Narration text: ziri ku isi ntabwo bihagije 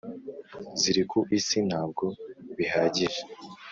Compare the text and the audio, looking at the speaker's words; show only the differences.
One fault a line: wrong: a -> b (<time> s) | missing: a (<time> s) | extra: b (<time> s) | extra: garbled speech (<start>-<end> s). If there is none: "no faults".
no faults